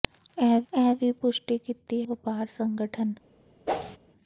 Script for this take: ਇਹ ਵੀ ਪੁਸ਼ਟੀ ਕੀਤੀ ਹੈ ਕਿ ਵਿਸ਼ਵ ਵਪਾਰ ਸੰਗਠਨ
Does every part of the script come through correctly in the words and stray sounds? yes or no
no